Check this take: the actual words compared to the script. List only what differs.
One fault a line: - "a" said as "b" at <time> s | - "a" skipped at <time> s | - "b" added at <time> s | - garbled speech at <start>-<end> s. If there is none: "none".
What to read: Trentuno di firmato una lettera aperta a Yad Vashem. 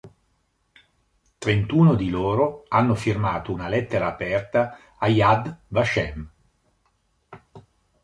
- "loro hanno" added at 2.1 s